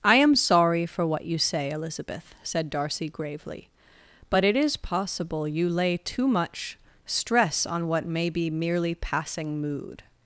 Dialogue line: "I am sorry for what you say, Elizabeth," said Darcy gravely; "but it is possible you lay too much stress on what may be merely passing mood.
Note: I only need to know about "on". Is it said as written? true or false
true